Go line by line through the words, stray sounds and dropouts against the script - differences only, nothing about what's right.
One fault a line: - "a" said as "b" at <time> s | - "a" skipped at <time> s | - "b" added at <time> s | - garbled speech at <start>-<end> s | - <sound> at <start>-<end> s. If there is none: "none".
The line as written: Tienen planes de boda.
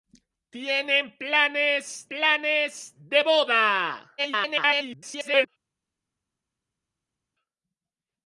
- "planes" added at 2.1 s
- garbled speech at 4.2-5.5 s